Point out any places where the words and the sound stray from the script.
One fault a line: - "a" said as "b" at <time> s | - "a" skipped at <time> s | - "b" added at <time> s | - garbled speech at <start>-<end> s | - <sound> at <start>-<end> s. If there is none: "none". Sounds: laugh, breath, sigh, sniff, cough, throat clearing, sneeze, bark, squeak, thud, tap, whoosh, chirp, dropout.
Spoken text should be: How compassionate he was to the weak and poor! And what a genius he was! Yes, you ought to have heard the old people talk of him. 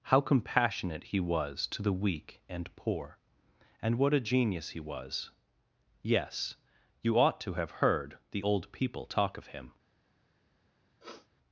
- sniff at 11.0-11.3 s